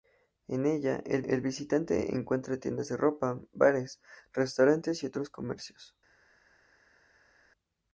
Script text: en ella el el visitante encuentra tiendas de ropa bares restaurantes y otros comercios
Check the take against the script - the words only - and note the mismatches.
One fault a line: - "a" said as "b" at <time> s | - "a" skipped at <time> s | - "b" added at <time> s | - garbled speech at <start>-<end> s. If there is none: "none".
none